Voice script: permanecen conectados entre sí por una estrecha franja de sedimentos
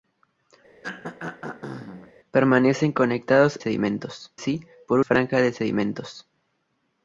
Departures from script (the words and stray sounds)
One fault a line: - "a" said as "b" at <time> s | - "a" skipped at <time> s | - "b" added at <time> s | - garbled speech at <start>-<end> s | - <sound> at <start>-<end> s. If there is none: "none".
- throat clearing at 0.8-2.1 s
- "entre" said as "sedimentos" at 3.6 s
- "una estrecha" skipped at 5.0 s